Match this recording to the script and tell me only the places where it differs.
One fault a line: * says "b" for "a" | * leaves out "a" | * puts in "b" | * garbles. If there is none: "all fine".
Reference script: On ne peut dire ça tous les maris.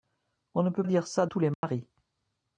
all fine